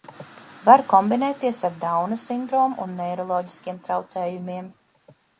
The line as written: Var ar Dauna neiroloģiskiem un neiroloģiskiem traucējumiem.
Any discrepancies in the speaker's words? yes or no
yes